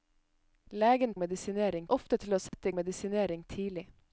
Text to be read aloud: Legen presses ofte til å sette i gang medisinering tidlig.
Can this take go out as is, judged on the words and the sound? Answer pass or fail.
fail